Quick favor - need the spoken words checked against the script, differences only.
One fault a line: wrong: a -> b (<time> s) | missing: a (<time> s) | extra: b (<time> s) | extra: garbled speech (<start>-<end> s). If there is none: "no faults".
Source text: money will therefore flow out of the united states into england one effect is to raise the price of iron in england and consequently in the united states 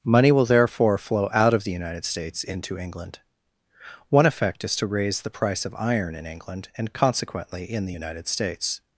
no faults